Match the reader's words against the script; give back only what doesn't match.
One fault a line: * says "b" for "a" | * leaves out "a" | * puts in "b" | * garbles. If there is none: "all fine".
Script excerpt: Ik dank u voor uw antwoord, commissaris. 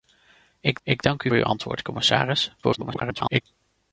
* puts in "ik"
* leaves out "voor"
* garbles